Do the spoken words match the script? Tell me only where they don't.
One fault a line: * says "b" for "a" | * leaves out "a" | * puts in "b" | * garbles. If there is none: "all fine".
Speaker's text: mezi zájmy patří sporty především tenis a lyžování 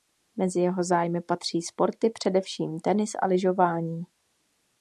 * puts in "jeho"